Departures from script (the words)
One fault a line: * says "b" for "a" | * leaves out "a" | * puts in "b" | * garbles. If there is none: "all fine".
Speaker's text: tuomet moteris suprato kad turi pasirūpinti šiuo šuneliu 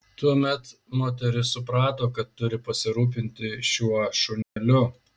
all fine